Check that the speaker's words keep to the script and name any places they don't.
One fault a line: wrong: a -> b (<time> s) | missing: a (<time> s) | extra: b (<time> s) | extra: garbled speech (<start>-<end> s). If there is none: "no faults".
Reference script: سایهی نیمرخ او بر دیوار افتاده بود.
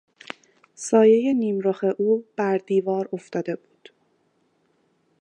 no faults